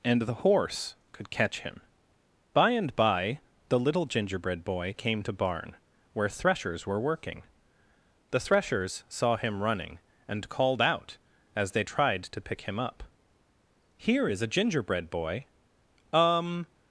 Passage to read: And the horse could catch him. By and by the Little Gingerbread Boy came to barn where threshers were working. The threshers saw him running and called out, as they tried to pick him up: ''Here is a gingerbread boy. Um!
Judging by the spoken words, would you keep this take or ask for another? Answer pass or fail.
pass